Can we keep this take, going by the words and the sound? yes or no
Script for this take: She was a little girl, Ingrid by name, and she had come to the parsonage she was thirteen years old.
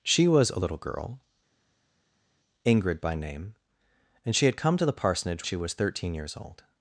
yes